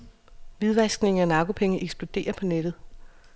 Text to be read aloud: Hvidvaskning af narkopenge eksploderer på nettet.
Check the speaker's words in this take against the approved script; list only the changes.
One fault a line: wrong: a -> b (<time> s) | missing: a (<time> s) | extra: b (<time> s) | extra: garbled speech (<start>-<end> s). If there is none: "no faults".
no faults